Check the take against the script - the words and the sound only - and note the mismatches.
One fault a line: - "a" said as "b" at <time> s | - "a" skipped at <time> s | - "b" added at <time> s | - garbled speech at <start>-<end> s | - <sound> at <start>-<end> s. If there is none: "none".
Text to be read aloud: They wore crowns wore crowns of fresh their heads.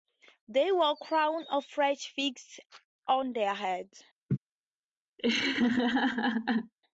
- "wore crowns of fresh" said as "of fresh figs on" at 1.5 s
- laugh at 4.3-4.4 s
- laugh at 5.2-6.7 s